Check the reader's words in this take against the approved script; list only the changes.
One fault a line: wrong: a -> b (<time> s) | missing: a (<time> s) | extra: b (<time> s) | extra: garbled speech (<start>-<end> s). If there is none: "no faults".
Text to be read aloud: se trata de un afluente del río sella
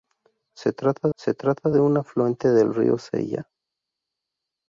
extra: se trata (1.2 s)